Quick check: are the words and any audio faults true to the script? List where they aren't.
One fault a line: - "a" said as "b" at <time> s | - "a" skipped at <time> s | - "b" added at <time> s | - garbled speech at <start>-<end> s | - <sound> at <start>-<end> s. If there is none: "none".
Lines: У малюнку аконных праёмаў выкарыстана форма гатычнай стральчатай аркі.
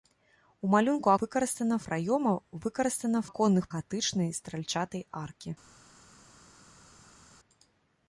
- "аконных" said as "выкарыстана" at 1.2 s
- "форма" said as "аконных" at 3.3 s